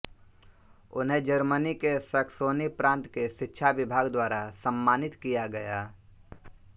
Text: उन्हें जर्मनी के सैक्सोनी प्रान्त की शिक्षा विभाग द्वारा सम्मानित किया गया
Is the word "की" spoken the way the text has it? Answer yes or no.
no